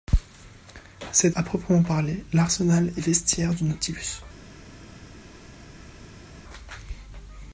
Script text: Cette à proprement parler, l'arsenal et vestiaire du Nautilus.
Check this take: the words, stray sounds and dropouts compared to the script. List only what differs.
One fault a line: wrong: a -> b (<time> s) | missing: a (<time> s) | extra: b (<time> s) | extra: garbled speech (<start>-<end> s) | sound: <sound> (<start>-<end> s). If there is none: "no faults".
no faults